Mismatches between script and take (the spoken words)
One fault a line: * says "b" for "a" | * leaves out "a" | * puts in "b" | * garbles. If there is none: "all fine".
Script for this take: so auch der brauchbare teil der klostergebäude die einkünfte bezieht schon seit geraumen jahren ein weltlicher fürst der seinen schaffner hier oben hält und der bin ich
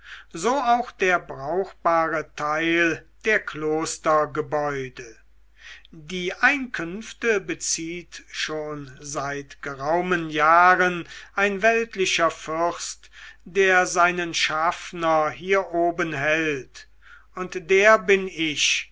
all fine